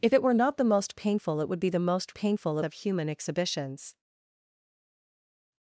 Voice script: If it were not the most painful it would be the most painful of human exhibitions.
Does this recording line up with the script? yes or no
yes